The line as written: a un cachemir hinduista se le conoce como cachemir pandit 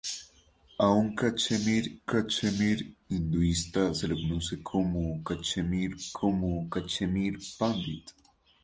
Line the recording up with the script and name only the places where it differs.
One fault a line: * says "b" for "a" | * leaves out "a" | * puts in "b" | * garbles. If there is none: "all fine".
* puts in "cachemir"
* puts in "como cachemir"